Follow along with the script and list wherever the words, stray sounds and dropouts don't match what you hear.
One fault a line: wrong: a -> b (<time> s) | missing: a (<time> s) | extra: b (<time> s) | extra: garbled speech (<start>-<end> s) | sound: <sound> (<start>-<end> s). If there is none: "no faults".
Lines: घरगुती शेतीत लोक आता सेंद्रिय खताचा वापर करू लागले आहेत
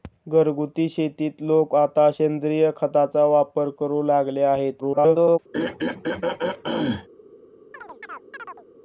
extra: garbled speech (4.8-5.4 s)
sound: throat clearing (5.5-7.1 s)
sound: chirp (7.7-8.7 s)